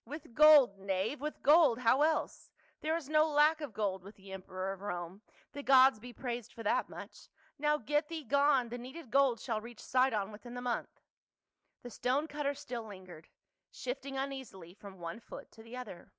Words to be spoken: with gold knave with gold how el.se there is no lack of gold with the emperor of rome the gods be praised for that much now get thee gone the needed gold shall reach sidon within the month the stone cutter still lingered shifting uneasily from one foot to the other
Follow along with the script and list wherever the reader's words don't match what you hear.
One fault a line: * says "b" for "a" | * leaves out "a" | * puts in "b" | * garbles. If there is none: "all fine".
all fine